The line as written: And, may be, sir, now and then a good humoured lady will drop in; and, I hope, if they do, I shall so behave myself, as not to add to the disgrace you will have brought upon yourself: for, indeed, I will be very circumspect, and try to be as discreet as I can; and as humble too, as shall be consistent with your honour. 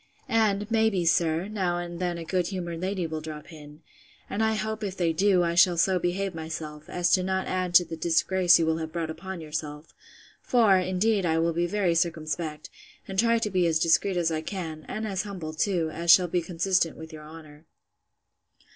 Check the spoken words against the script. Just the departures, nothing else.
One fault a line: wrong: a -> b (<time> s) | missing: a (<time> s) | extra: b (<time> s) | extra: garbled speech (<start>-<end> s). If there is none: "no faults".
no faults